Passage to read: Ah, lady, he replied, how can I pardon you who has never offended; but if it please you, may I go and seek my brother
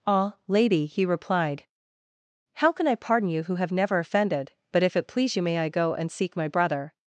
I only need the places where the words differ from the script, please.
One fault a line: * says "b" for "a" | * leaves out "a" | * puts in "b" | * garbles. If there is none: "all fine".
* says "have" for "has"